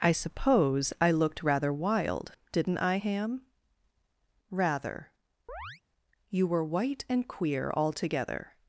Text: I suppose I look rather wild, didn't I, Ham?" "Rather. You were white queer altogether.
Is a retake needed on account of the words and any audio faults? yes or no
yes